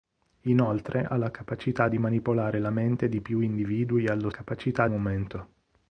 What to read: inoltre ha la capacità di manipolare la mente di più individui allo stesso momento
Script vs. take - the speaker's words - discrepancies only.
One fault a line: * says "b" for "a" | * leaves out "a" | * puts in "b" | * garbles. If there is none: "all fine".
* says "capacità" for "stesso"